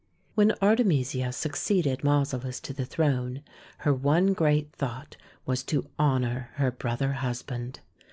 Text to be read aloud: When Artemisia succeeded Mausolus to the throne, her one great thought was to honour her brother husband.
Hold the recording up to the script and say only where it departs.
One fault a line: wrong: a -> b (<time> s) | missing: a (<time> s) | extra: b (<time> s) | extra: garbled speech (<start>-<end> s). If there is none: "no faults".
no faults